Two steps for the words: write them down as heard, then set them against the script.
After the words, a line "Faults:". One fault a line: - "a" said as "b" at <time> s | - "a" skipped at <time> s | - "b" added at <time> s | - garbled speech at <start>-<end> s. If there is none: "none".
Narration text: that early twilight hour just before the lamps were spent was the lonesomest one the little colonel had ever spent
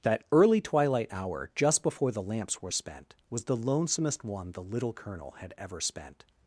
that early twilight hour just before the lamps were spent was the lonesomest one the little colonel had ever spent
Faults:
none